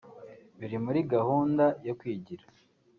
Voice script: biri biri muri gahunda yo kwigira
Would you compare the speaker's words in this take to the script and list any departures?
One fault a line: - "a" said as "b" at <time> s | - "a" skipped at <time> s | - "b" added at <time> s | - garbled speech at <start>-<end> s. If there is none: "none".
- "biri" skipped at 0.8 s